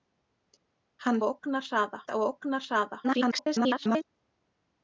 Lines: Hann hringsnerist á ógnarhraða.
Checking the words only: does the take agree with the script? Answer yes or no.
no